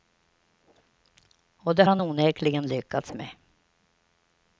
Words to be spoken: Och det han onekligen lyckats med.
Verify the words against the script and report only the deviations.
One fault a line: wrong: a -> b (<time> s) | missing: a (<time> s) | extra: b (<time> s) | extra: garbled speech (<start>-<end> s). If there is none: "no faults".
no faults